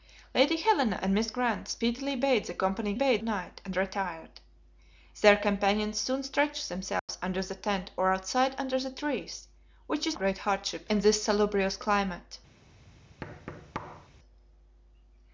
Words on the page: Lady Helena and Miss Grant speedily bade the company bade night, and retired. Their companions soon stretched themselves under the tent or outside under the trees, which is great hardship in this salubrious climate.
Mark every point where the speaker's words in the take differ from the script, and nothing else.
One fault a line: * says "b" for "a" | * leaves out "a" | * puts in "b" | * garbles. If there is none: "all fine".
all fine